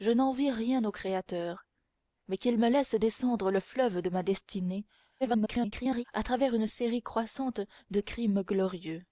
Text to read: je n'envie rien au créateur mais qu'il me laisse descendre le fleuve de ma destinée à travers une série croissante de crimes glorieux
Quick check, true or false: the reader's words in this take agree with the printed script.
false